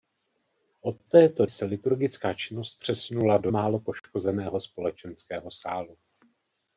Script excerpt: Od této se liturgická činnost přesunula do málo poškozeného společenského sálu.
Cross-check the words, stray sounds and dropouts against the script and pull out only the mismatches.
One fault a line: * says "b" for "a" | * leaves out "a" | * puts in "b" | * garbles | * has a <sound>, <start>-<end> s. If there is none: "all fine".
all fine